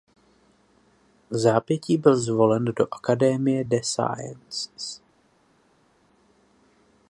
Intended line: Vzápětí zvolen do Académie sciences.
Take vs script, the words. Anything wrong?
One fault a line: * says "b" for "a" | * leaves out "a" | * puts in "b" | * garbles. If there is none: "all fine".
* puts in "byl"
* puts in "des"